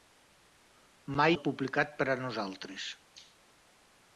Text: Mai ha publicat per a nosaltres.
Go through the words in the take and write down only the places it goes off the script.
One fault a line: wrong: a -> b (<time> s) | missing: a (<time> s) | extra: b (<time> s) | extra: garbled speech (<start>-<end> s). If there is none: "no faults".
no faults